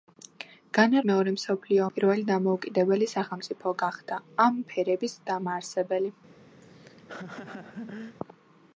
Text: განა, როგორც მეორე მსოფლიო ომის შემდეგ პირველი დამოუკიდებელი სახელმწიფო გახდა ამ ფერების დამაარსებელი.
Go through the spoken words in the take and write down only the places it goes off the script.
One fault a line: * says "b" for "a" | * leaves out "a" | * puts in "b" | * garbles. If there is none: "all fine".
* leaves out "როგორც"
* leaves out "ომის შემდეგ"